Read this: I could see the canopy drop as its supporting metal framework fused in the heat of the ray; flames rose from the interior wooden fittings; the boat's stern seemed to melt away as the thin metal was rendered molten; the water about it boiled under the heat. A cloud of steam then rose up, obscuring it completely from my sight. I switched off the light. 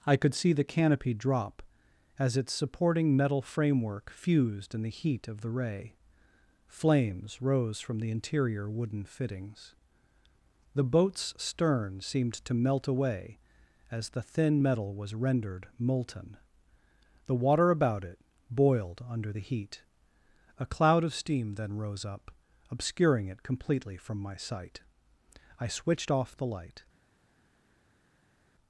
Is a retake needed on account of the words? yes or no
no